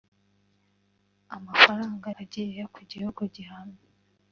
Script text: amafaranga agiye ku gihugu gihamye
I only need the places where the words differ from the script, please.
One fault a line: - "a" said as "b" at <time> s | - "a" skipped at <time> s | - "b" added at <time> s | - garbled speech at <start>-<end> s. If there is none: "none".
none